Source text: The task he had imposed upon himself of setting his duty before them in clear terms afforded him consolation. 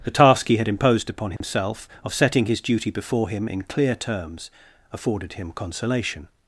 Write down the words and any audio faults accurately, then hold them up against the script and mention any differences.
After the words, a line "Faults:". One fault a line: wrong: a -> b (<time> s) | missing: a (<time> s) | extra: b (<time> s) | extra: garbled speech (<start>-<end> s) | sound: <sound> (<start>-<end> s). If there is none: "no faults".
The task he had imposed upon himself of setting his duty before him in clear terms afforded him consolation.
Faults:
sound: dropout (1.4-1.4 s)
wrong: them -> him (3.3 s)